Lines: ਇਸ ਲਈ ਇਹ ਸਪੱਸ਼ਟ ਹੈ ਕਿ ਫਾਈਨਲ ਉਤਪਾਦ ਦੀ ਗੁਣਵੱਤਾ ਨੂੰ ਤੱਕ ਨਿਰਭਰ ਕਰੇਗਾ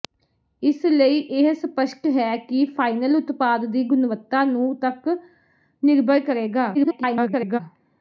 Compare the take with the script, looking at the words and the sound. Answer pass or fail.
fail